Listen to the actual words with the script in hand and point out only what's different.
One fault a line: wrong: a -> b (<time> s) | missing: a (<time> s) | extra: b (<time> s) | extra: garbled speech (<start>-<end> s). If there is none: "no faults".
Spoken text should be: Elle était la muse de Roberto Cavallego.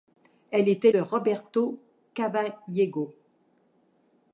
missing: la muse (0.9 s)